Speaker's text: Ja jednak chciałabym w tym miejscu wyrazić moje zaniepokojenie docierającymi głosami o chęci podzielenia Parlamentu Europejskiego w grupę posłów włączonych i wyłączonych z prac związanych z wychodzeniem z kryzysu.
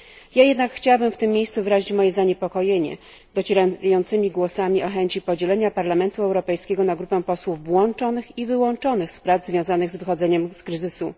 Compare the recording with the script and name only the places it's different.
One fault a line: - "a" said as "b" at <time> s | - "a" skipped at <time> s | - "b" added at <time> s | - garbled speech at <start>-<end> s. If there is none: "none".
- "w" said as "na" at 6.8 s